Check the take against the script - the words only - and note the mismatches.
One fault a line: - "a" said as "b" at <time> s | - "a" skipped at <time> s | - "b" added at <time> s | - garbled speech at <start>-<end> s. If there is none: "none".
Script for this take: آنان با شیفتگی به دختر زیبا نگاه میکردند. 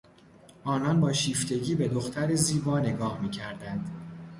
none